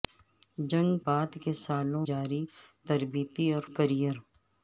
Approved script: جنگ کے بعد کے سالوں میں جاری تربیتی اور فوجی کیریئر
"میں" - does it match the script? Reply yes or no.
no